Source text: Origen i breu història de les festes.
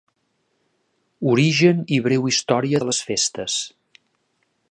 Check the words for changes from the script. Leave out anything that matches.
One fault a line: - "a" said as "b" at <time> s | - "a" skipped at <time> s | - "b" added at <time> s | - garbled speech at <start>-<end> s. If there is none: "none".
none